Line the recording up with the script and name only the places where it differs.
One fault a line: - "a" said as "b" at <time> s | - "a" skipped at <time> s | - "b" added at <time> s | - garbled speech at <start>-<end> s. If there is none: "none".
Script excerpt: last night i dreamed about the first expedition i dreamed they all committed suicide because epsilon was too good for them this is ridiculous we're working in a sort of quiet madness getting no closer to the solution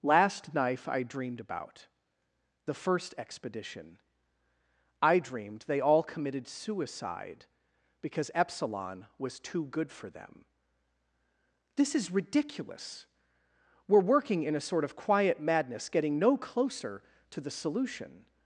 - "night" said as "knife" at 0.5 s